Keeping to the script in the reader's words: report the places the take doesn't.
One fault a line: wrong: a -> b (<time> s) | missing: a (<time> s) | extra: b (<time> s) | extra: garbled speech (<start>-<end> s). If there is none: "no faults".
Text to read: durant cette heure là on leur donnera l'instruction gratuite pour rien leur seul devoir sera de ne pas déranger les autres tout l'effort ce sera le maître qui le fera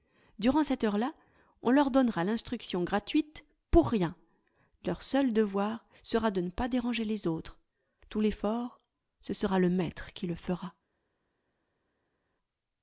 no faults